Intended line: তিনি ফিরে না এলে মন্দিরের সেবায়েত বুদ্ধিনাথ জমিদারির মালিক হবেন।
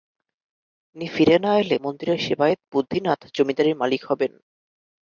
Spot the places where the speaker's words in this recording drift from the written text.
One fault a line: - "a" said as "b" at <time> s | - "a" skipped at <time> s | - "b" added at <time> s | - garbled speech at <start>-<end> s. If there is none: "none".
none